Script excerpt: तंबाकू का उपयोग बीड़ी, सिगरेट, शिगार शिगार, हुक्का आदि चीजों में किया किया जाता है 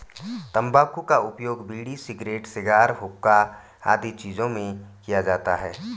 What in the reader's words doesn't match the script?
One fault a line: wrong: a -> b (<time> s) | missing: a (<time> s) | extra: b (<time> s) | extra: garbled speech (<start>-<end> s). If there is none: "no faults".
missing: शिगार (2.9 s)
missing: किया (5.2 s)